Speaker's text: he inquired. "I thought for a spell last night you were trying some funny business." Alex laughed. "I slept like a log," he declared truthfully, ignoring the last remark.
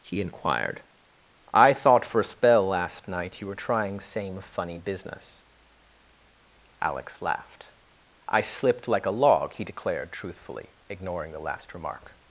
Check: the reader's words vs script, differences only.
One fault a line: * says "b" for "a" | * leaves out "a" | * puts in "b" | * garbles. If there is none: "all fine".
* says "same" for "some"
* says "slipped" for "slept"